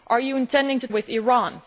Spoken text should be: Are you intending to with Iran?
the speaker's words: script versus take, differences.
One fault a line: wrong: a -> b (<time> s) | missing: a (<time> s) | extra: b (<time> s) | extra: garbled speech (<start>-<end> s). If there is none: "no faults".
no faults